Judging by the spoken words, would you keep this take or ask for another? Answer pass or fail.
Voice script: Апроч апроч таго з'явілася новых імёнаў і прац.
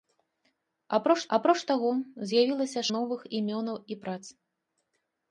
pass